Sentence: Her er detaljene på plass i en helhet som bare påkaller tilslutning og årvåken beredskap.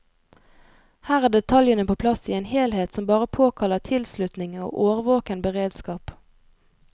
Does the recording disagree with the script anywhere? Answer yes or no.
no